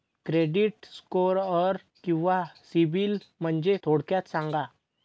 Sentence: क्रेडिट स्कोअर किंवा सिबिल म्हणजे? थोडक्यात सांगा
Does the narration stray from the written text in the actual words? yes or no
no